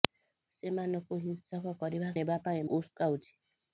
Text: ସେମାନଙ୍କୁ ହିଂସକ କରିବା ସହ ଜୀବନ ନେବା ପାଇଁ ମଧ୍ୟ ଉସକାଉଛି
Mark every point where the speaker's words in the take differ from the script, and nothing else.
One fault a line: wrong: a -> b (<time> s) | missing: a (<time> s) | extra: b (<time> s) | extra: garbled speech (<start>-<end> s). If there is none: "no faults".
missing: ସହ ଜୀବନ (2.1 s)
missing: ମଧ୍ୟ (2.7 s)